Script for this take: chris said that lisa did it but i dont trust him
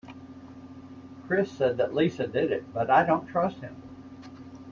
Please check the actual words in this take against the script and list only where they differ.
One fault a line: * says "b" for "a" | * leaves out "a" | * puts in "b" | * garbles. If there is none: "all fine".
all fine